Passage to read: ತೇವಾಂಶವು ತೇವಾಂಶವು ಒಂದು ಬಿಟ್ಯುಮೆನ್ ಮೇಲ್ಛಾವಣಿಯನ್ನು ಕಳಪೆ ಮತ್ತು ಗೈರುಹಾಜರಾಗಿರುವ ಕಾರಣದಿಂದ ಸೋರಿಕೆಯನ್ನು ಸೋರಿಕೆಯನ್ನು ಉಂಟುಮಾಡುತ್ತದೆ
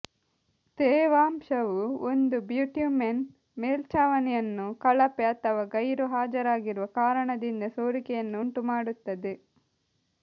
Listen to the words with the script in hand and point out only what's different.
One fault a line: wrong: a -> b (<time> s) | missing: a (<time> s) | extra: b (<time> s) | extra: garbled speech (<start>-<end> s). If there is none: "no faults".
missing: ತೇವಾಂಶವು (1.8 s)
wrong: ಮತ್ತು -> ಅಥವಾ (5.3 s)
missing: ಸೋರಿಕೆಯನ್ನು (8.4 s)